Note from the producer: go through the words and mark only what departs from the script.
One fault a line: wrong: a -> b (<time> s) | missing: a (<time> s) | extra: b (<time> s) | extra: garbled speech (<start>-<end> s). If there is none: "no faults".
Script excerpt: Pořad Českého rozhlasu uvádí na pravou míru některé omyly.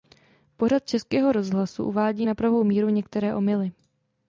no faults